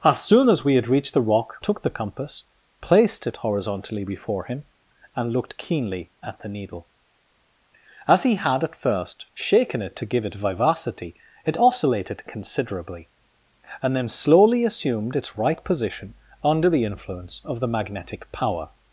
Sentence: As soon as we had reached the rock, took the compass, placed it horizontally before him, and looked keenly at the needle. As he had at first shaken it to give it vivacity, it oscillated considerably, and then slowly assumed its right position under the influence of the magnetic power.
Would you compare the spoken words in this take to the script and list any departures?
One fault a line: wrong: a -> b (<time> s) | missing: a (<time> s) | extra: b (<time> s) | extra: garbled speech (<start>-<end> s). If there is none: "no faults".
no faults